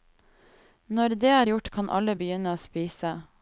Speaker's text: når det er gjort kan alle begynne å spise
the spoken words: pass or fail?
pass